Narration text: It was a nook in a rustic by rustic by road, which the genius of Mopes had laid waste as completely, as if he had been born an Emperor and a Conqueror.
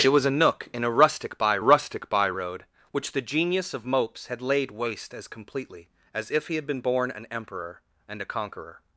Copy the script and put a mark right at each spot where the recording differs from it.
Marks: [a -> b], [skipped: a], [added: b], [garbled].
It was a nook in a rustic by rustic by road, which the genius of Mopes had laid waste as completely, as if he had been born an Emperor and a Conqueror.